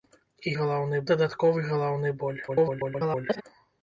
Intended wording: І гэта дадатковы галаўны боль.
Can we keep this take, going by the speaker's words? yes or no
no